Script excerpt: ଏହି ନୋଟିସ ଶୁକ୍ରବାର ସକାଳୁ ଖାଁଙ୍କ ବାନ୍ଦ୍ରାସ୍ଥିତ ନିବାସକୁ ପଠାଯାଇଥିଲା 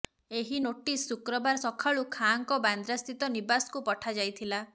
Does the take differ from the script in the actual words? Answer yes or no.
no